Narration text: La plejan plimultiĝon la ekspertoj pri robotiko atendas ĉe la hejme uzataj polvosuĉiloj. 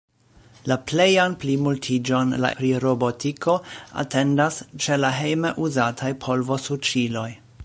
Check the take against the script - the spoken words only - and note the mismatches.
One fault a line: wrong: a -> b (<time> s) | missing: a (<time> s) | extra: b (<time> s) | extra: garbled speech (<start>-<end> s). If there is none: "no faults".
missing: ekspertoj (2.5 s)